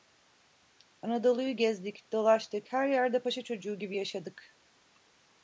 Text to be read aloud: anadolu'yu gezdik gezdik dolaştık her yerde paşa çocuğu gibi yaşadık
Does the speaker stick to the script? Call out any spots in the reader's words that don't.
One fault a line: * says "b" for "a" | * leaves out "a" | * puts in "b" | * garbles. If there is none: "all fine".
* leaves out "gezdik"